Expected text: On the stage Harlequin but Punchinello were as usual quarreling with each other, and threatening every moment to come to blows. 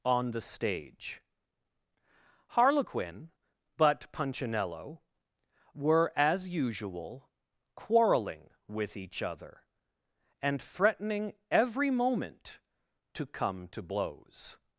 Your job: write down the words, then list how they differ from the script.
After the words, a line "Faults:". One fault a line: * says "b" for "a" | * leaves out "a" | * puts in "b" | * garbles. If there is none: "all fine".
On the stage Harlequin but Punchinello were as usual quarreling with each other, and threatening every moment to come to blows.
Faults:
all fine